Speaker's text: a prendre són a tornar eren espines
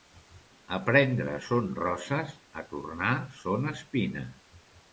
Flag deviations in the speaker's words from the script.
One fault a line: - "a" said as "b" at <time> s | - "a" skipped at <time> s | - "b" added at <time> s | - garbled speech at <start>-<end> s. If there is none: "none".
- "roses" added at 1.8 s
- "eren" said as "són" at 3.4 s